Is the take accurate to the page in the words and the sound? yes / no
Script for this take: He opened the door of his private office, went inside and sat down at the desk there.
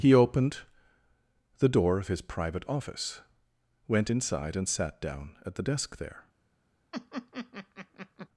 no